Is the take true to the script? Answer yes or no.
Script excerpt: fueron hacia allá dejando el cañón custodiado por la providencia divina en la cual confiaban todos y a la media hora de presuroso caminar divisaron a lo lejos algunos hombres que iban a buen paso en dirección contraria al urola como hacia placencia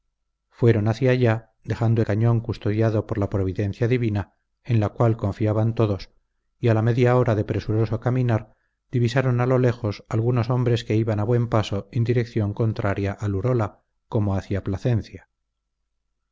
no